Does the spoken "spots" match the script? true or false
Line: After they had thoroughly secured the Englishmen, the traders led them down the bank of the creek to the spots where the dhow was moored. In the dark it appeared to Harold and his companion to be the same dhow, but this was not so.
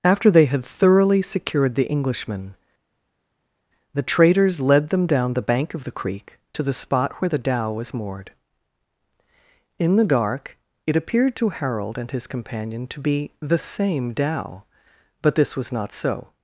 false